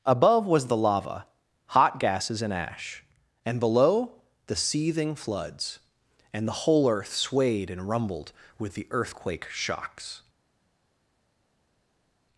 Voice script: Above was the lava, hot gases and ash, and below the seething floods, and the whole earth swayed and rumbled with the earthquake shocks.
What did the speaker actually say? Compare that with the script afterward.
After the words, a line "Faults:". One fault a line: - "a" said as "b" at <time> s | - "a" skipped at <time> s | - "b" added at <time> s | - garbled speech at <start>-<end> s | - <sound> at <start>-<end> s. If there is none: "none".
Above was the lava, hot gases and ash, and below the seething floods, and the whole earth swayed and rumbled with the earthquake shocks.
Faults:
none